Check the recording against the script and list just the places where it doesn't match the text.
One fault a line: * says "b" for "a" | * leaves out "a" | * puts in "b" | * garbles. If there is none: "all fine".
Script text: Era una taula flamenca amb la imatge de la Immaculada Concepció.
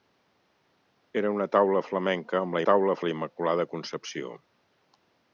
* says "taula" for "imatge"